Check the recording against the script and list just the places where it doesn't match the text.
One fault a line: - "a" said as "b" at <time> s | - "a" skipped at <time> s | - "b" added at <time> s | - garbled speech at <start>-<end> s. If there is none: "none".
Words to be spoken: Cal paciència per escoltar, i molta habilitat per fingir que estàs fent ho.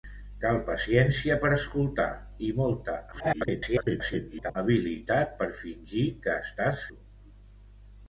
- garbled speech at 3.1-4.6 s
- "fent" skipped at 6.8 s